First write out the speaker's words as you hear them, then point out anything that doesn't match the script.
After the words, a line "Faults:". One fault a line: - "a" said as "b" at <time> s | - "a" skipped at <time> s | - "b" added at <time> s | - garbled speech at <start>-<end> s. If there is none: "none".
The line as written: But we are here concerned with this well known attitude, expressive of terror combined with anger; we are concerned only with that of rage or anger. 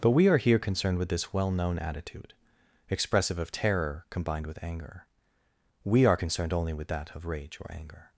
But we are here concerned with this well known attitude, expressive of terror combined with anger; we are concerned only with that of rage or anger.
Faults:
none